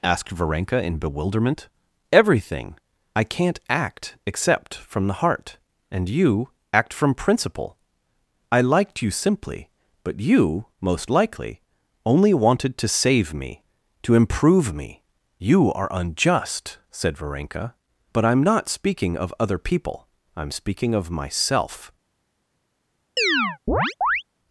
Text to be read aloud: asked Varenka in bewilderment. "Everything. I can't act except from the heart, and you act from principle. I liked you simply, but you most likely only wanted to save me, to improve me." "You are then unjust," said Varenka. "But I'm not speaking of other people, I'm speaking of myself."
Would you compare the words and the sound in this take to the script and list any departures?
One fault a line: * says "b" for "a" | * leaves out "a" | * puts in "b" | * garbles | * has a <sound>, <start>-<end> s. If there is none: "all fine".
* leaves out "then"
* has a chirp, 23.2-24.2 s